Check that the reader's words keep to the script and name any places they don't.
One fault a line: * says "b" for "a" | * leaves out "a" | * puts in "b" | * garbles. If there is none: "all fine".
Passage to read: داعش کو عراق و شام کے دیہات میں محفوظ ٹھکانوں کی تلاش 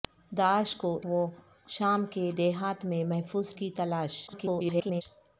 * leaves out "عراق"
* leaves out "ٹھکانوں"
* garbles